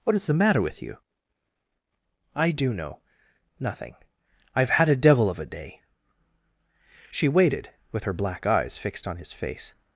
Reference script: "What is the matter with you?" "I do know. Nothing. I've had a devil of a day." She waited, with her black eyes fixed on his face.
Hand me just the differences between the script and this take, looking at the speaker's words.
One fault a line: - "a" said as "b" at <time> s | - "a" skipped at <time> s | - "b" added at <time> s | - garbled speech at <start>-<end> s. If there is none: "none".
none